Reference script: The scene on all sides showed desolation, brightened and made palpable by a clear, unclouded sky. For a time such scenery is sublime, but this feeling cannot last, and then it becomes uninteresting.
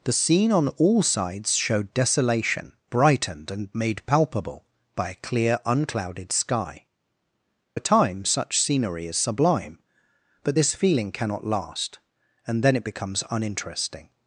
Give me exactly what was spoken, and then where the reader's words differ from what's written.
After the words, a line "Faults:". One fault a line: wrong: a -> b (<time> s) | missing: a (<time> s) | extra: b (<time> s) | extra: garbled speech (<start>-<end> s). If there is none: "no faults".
The scene on all sides showed desolation, brightened and made palpable by a clear, unclouded sky. A time such scenery is sublime, but this feeling cannot last, and then it becomes uninteresting.
Faults:
missing: For (6.9 s)